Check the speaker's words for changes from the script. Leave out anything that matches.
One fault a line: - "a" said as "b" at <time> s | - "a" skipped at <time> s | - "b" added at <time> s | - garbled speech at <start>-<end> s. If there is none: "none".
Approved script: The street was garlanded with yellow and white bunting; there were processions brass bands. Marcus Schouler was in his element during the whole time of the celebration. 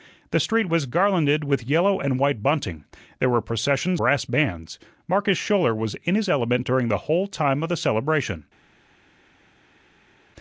none